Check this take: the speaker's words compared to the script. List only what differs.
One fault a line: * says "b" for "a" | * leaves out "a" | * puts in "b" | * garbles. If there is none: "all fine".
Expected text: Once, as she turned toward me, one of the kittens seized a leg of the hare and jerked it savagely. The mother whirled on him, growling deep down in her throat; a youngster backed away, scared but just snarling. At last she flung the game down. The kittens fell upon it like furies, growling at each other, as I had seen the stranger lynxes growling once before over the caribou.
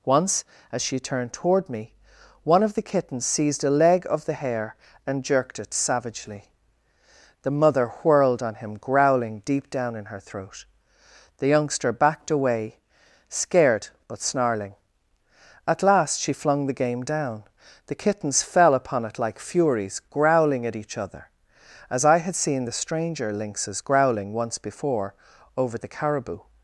* says "the" for "a"
* leaves out "just"